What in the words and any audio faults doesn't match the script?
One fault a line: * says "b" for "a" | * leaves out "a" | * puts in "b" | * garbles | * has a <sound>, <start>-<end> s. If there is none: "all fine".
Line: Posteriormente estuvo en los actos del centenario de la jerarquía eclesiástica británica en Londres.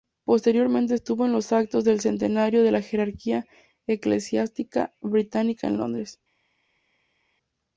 all fine